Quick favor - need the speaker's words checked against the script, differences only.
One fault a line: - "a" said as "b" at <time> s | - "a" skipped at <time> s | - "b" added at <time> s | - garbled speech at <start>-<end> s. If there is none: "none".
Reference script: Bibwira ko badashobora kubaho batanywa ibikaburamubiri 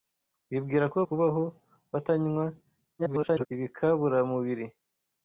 - "badashobora" skipped at 1.0 s
- garbled speech at 3.0-3.5 s